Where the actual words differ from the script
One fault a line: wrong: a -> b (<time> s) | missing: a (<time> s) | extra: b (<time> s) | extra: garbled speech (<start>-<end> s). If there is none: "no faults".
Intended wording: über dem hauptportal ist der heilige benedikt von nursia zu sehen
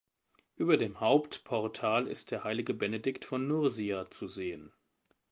no faults